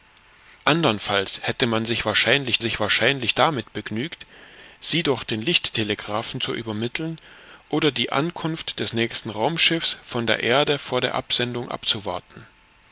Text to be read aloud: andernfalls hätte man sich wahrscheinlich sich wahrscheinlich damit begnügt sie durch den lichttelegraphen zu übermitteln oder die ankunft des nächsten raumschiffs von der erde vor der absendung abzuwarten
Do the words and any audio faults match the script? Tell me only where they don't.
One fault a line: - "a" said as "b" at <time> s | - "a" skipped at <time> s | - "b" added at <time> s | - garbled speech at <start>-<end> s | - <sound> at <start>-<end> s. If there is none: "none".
none